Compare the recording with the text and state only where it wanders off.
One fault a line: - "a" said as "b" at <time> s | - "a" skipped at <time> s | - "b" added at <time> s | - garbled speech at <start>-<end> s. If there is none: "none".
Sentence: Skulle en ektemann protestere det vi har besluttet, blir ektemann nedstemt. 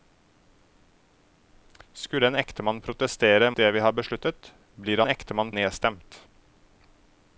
none